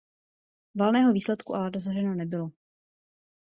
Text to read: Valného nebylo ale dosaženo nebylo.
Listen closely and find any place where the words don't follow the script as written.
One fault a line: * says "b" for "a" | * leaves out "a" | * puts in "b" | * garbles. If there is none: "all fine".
* says "výsledku" for "nebylo"